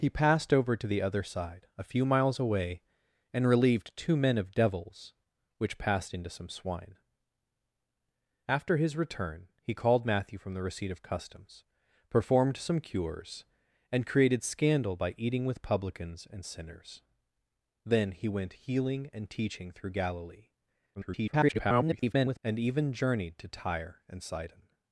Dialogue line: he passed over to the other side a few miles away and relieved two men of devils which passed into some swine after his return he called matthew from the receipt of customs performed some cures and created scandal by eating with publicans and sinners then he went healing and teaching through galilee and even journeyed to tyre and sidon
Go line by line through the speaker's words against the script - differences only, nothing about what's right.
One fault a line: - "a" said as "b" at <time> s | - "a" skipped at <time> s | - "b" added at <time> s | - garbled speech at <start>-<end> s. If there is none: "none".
- garbled speech at 21.0-22.4 s